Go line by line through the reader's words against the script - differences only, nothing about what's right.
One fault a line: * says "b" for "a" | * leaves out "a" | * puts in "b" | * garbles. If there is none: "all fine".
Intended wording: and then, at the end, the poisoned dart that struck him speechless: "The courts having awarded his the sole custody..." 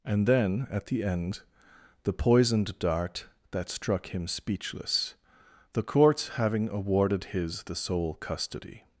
all fine